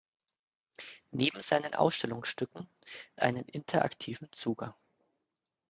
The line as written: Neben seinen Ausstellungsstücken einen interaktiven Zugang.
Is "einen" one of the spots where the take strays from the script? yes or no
no